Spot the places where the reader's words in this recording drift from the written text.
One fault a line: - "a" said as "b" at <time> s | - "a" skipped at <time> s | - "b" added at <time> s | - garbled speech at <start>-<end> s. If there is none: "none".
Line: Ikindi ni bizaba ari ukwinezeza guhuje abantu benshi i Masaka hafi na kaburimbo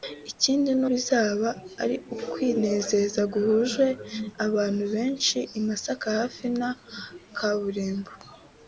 none